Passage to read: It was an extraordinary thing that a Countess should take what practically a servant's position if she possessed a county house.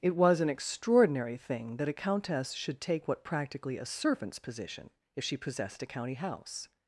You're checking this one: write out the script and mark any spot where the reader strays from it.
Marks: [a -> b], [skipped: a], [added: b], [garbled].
It was an extraordinary thing that a Countess should take what practically a servant's position if she possessed a county house.